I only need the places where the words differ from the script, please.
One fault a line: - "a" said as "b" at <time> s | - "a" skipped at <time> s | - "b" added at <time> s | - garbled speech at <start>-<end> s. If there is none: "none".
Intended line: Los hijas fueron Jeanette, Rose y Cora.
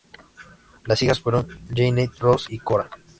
- "Los" said as "Las" at 0.8 s